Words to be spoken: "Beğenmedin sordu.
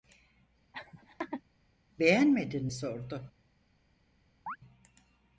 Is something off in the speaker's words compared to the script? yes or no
no